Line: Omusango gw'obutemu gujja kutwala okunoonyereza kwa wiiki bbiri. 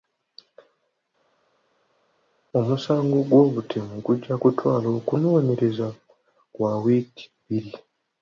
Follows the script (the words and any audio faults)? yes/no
yes